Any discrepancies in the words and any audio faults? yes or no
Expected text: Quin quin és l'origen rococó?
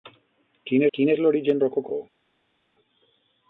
no